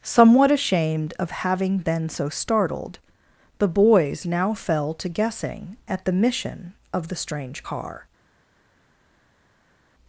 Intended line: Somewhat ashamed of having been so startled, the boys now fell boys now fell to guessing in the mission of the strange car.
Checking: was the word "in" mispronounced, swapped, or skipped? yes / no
yes